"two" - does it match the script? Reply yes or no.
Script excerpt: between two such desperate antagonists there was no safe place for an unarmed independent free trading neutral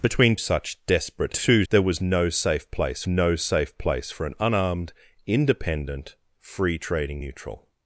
no